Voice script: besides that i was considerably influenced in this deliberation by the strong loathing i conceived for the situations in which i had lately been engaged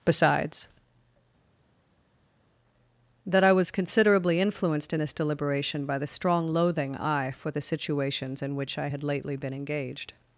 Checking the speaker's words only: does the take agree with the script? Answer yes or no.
no